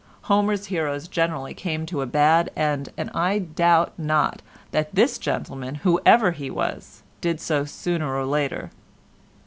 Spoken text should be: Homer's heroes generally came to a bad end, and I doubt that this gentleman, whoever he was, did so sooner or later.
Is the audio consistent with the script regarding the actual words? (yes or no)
no